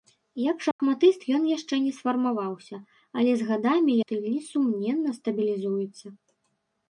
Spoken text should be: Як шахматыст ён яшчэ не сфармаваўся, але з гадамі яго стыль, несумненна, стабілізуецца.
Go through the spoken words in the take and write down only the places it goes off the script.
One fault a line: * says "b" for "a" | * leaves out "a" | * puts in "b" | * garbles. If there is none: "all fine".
* leaves out "яго"